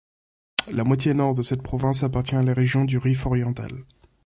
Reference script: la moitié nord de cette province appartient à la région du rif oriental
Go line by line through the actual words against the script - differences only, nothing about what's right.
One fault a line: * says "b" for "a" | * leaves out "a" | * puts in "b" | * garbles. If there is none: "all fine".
all fine